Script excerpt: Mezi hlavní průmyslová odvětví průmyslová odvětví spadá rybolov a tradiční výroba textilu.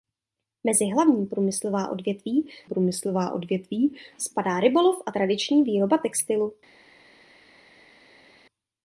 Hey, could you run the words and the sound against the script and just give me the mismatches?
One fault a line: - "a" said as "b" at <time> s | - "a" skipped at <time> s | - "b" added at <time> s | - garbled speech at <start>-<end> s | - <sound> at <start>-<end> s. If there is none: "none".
none